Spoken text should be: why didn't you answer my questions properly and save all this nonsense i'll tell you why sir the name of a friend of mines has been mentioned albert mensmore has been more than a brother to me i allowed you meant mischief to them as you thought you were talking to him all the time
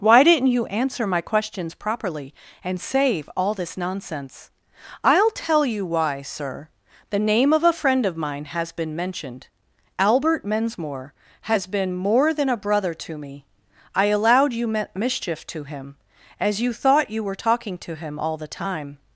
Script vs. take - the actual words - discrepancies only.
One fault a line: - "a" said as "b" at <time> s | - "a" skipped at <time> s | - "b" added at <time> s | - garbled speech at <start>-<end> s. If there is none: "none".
- "mines" said as "mine" at 8.2 s
- "them" said as "him" at 15.7 s